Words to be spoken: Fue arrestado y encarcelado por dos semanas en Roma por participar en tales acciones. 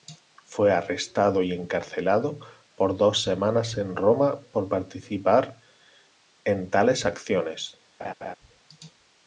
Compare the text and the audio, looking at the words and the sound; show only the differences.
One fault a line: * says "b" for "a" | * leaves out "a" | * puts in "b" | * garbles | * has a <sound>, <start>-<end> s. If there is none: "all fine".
* has a laugh, 8.0-8.4 s